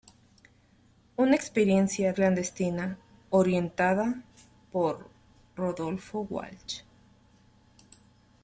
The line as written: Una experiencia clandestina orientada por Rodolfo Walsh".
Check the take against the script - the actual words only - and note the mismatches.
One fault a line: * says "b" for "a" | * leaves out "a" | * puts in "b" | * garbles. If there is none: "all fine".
all fine